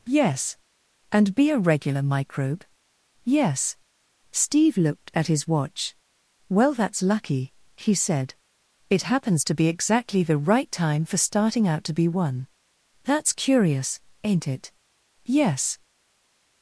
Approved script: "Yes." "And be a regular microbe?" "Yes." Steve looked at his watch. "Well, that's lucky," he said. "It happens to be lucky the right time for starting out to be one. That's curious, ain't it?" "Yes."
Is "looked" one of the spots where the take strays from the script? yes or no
no